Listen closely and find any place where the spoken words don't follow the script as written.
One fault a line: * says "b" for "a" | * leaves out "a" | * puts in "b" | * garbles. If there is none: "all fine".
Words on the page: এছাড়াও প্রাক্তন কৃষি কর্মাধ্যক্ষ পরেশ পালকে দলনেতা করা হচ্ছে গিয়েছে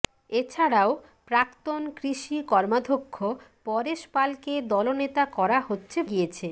all fine